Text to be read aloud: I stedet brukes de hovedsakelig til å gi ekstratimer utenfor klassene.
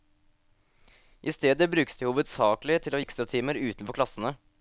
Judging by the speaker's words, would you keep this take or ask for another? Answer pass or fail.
fail